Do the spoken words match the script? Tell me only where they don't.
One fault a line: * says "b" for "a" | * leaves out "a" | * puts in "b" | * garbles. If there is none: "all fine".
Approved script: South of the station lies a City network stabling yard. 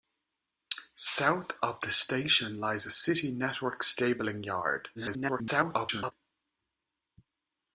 * garbles